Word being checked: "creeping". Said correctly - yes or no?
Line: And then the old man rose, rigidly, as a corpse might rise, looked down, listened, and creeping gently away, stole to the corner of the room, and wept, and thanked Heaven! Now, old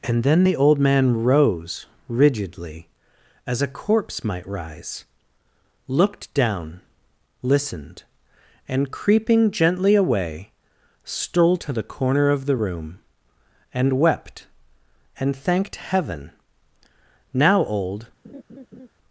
yes